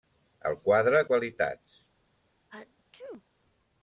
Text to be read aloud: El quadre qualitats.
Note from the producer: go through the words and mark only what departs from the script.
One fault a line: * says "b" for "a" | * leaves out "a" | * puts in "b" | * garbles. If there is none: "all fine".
all fine